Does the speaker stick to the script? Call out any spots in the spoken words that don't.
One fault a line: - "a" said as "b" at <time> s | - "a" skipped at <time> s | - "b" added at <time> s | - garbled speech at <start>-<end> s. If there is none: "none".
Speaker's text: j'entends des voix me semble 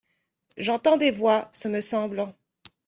- "ce" added at 1.5 s